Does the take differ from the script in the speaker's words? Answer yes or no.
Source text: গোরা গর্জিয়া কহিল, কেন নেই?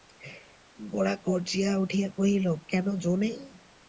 yes